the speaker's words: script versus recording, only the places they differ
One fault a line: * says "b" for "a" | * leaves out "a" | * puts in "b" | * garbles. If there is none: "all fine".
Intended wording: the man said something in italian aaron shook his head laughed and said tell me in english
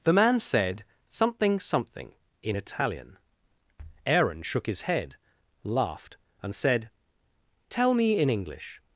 * puts in "something"